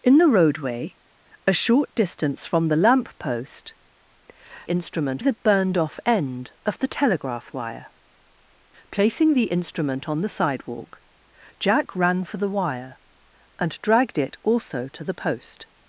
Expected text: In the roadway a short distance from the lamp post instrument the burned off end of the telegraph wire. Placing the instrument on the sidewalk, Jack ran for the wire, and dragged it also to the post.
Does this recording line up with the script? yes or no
yes